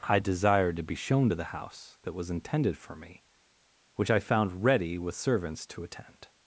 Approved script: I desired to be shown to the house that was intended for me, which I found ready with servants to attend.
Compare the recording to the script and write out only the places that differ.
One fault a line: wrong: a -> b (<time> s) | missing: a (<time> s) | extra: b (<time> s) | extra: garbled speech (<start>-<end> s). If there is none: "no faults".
no faults